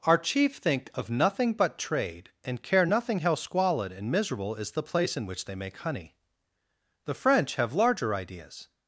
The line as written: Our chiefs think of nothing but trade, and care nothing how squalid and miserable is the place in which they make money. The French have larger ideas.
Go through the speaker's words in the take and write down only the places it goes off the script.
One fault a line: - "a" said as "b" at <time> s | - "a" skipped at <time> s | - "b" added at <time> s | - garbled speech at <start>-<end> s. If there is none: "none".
- "chiefs" said as "chief" at 0.2 s
- "money" said as "honey" at 5.8 s